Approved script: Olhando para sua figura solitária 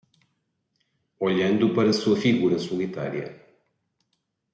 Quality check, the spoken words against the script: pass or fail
pass